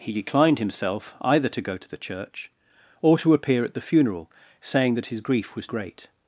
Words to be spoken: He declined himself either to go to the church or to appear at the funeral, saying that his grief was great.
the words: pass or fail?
pass